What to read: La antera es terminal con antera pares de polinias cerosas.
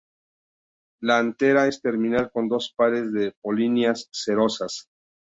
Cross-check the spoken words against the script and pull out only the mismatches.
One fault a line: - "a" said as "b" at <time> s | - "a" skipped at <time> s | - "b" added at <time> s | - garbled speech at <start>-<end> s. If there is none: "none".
- "antera" said as "dos" at 2.5 s